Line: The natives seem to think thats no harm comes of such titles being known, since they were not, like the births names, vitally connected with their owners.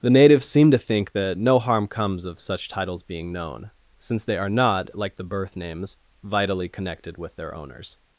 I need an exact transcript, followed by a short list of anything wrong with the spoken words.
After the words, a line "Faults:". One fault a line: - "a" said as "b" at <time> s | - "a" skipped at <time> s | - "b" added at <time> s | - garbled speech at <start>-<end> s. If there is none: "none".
The natives seem to think that no harm comes of such titles being known, since they are not, like the birth names, vitally connected with their owners.
Faults:
- "thats" said as "that" at 1.1 s
- "were" said as "are" at 4.4 s
- "births" said as "birth" at 5.2 s